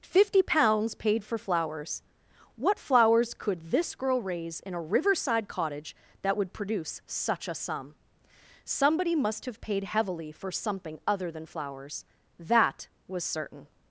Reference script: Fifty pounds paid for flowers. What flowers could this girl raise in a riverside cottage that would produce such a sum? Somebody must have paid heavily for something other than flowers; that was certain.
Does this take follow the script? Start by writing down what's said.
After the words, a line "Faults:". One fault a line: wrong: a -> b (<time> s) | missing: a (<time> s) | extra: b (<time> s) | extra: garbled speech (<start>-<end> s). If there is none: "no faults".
Fifty pounds paid for flowers. What flowers could this girl raise in a riverside cottage that would produce such a sum? Somebody must have paid heavily for something other than flowers; that was certain.
Faults:
no faults